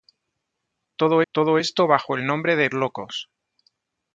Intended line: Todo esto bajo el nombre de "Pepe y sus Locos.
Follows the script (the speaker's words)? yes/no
no